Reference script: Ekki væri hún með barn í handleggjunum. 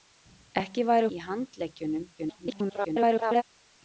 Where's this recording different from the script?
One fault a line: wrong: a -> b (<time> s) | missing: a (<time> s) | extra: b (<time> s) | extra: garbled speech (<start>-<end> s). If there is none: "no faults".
missing: hún með barn (1.1 s)
extra: garbled speech (2.2-3.4 s)